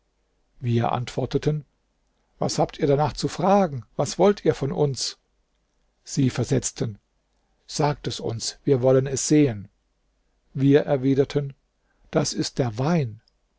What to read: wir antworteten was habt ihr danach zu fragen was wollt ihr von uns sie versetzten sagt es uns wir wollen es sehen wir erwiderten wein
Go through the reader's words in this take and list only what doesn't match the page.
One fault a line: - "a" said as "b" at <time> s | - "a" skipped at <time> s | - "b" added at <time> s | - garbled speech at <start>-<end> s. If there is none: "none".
- "das ist der" added at 12.1 s